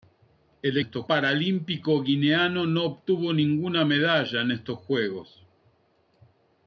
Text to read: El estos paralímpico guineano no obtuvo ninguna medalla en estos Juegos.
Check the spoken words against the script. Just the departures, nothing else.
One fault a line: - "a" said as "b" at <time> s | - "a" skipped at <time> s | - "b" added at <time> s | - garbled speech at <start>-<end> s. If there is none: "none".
none